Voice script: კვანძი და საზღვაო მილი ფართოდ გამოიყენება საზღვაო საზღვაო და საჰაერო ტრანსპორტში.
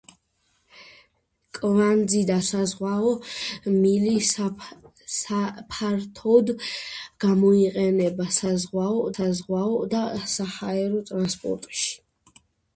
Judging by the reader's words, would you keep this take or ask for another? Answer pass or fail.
pass